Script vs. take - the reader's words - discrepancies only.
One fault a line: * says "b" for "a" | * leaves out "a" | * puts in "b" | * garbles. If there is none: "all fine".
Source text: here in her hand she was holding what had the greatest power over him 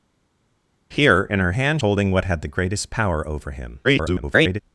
* leaves out "she was"
* garbles